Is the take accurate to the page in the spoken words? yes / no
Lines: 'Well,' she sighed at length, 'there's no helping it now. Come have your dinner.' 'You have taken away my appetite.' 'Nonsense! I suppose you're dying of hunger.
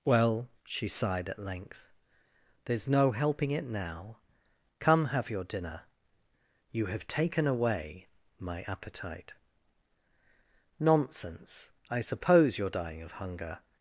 yes